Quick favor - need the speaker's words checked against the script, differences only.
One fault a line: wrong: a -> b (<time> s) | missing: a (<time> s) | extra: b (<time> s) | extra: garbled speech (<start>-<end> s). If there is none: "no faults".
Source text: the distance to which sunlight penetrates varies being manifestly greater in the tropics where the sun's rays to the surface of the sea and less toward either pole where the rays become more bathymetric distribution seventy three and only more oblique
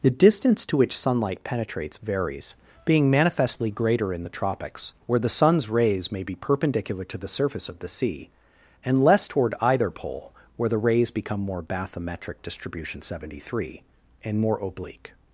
extra: may be perpendicular (6.1 s)
missing: only (14.4 s)